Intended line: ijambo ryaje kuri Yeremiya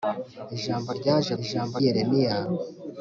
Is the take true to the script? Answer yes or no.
no